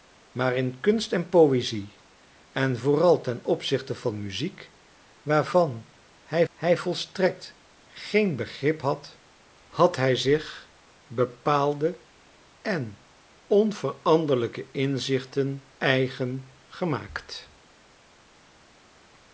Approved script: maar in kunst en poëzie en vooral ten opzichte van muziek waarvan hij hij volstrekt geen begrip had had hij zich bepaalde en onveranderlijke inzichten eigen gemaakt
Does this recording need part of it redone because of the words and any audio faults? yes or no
no